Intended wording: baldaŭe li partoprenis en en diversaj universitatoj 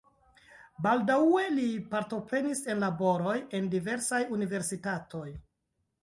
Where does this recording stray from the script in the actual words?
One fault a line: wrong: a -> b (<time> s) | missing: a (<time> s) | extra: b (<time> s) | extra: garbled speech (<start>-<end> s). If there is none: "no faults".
extra: laboroj (2.8 s)